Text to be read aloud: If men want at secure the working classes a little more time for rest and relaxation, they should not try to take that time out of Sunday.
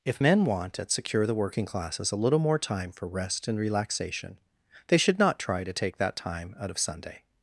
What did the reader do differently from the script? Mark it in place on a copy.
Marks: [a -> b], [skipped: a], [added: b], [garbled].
If men want at secure the working classes a little more time for rest and relaxation, they should not try to take that time out of Sunday.